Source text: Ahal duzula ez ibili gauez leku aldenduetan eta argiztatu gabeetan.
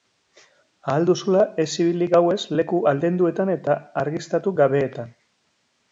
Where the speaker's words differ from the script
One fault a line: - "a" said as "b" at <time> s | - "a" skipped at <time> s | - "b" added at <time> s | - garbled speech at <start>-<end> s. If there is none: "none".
none